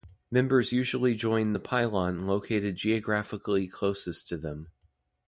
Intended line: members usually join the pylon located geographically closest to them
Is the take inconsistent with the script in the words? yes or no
no